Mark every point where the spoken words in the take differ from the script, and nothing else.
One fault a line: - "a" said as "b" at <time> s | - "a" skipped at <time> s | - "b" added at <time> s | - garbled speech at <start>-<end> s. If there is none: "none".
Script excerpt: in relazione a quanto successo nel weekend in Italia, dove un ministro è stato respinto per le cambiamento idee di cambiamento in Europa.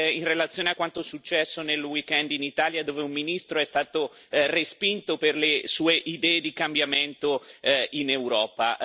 - "cambiamento" said as "sue" at 5.7 s